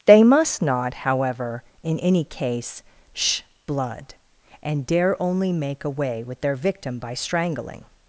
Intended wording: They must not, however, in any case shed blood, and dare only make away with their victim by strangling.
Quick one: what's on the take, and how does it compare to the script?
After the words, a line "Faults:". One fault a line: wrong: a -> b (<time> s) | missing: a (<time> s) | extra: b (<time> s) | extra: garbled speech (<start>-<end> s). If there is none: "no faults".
They must not, however, in any case sh blood, and dare only make away with their victim by strangling.
Faults:
wrong: shed -> sh (3.1 s)